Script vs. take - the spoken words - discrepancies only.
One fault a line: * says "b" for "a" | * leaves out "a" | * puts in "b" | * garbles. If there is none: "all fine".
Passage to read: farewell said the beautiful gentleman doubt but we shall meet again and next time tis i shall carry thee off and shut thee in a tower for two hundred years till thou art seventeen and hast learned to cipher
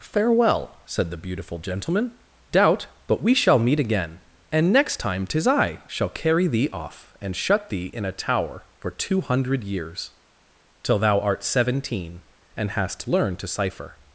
all fine